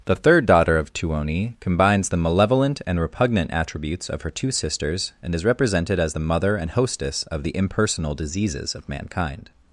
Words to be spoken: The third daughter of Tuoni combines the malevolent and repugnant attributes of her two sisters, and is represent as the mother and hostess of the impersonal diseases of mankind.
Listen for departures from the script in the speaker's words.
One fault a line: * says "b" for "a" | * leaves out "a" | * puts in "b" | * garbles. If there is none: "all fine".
* says "represented" for "represent"